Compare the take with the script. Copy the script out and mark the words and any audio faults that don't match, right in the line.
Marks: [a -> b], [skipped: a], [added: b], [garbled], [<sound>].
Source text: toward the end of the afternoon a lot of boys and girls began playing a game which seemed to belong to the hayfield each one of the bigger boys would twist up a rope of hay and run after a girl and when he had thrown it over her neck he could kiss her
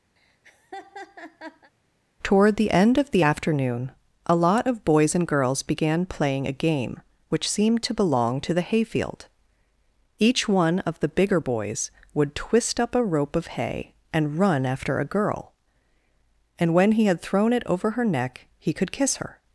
[laugh] toward the end of the afternoon a lot of boys and girls began playing a game which seemed to belong to the hayfield each one of the bigger boys would twist up a rope of hay and run after a girl and when he had thrown it over her neck he could kiss her